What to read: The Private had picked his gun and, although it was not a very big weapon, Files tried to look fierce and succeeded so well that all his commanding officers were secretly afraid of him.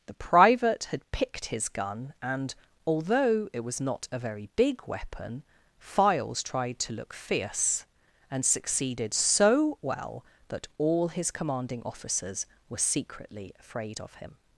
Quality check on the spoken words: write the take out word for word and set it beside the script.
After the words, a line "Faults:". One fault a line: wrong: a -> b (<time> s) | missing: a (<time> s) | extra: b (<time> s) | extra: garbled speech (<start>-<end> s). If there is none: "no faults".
The Private had picked his gun and, although it was not a very big weapon, Files tried to look fierce and succeeded so well that all his commanding officers were secretly afraid of him.
Faults:
no faults